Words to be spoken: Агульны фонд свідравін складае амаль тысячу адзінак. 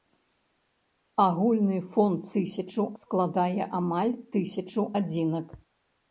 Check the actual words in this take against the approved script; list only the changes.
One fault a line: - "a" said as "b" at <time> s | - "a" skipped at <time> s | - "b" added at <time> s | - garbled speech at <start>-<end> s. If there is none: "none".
- "свідравін" said as "тысячу" at 2.4 s